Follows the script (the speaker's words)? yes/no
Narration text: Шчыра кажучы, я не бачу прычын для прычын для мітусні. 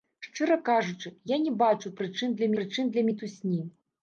yes